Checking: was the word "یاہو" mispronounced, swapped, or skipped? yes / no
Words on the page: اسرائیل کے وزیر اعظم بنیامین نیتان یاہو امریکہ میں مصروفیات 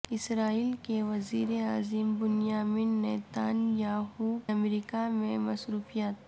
no